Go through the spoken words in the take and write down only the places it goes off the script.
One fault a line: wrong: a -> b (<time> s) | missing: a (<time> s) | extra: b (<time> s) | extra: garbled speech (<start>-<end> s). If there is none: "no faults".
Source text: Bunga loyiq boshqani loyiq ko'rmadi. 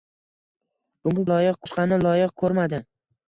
no faults